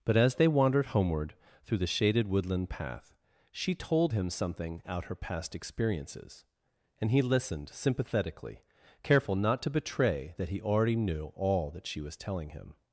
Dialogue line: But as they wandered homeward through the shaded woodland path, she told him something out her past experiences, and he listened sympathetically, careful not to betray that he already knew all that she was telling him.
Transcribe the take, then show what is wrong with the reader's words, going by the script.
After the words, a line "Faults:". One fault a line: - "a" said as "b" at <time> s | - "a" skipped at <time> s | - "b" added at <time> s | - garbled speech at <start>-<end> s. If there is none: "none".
But as they wandered homeward through the shaded woodland path, she told him something out her past experiences, and he listened sympathetically, careful not to betray that he already knew all that she was telling him.
Faults:
none